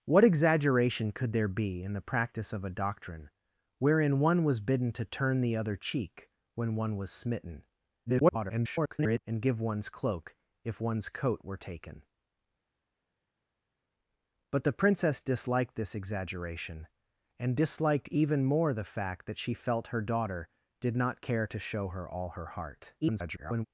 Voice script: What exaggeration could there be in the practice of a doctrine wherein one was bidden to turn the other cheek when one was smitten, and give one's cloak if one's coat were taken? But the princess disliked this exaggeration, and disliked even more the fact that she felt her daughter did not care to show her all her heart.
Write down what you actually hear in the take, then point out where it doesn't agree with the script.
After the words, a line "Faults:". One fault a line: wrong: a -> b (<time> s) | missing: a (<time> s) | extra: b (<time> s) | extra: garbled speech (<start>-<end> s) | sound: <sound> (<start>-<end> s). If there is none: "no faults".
What exaggeration could there be in the practice of a doctrine wherein one was bidden to turn the other cheek when one was smitten, [garbled] and give one's cloak if one's coat were taken? But the princess disliked this exaggeration, and disliked even more the fact that she felt her daughter did not care to show her all her heart. [garbled]
Faults:
extra: garbled speech (8.1-9.2 s)
extra: garbled speech (23.0-23.7 s)